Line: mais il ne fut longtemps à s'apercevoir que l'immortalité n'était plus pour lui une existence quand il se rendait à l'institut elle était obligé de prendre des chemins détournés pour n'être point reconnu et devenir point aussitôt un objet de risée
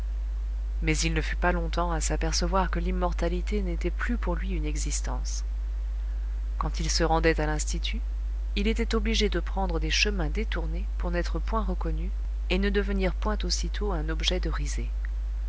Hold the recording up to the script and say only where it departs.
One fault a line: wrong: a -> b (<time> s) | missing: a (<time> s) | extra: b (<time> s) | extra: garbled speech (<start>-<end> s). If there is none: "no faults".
extra: pas (1.4 s)
wrong: elle -> il (8.6 s)
extra: ne (12.6 s)